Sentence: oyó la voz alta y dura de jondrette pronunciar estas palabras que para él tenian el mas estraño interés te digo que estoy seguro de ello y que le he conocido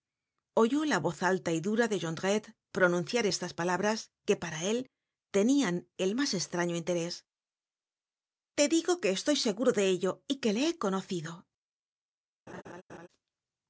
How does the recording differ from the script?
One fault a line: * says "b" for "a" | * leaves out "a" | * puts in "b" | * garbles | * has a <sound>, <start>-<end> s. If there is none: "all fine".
* has a laugh, 12.5-13.1 s